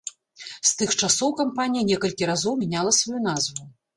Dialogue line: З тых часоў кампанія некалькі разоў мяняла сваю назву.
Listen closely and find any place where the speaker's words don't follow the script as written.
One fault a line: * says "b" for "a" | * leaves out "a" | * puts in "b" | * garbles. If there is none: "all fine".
all fine